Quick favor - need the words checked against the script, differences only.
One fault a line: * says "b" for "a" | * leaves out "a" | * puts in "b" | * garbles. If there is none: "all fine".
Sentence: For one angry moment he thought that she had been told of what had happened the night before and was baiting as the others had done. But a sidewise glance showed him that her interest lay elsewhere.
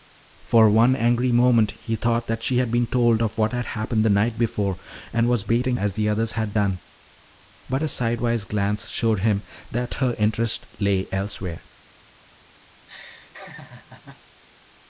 all fine